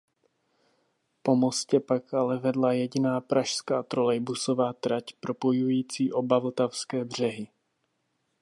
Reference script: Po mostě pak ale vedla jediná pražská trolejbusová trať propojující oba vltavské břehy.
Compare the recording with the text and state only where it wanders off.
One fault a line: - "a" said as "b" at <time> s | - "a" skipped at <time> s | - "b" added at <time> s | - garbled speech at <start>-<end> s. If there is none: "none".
none